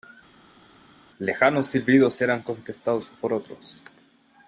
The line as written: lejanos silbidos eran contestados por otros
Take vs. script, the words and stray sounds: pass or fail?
pass